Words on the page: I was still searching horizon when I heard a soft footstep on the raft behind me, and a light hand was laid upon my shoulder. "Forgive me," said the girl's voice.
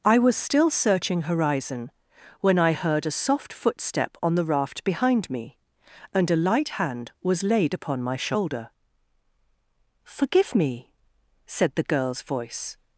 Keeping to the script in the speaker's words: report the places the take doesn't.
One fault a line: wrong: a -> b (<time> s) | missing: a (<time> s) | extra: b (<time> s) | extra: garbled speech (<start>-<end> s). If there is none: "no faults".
no faults